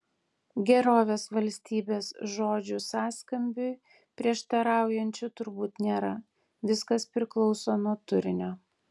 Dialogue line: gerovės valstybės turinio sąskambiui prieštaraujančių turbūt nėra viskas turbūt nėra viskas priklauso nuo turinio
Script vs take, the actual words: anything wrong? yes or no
yes